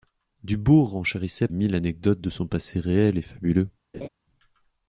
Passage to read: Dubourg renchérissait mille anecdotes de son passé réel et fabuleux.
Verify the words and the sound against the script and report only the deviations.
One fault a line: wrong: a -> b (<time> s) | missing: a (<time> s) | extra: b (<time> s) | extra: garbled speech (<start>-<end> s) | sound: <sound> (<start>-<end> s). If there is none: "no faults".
sound: laugh (3.9-4.1 s)